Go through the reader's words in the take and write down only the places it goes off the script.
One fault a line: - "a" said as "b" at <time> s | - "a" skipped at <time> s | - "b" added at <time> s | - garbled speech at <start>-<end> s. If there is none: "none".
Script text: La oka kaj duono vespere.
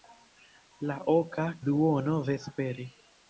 - "kaj" skipped at 1.5 s